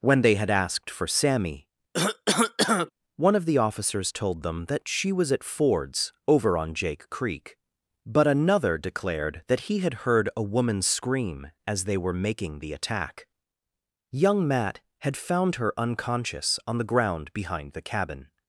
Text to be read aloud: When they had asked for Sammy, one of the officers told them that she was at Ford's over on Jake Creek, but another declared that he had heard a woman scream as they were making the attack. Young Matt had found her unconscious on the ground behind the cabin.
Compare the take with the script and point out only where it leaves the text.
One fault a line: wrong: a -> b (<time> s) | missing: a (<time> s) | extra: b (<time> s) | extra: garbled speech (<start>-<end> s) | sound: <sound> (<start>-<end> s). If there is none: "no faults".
sound: cough (1.9-2.9 s)